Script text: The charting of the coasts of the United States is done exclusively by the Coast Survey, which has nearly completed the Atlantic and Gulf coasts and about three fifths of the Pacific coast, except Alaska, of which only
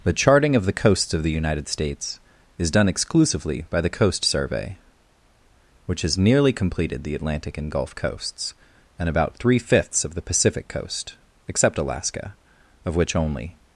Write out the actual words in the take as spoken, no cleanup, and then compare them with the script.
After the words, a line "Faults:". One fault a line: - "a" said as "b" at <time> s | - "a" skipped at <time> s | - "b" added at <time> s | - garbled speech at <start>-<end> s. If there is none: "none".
The charting of the coasts of the United States is done exclusively by the Coast Survey, which has nearly completed the Atlantic and Gulf coasts and about three fifths of the Pacific coast, except Alaska, of which only
Faults:
none